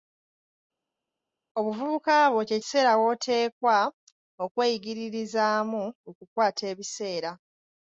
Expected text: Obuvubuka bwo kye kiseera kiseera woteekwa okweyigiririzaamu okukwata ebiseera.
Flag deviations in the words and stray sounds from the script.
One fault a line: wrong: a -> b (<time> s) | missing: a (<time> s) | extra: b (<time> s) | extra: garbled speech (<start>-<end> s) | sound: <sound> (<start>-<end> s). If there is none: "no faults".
missing: kiseera (2.9 s)